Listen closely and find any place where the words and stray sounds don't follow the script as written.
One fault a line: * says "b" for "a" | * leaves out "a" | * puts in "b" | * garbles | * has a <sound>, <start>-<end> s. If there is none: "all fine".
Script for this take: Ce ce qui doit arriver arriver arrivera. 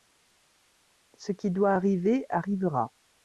* leaves out "ce"
* leaves out "arriver"